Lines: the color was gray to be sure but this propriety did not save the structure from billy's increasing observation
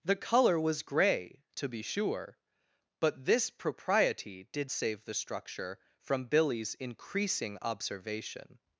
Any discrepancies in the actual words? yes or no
yes